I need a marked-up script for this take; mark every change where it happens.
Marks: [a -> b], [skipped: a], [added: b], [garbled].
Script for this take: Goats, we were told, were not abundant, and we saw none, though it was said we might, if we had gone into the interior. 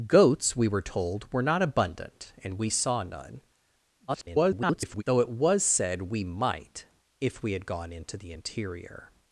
Goats, we were told, were not abundant, and we saw none, [garbled] though it was said we might, if we had gone into the interior.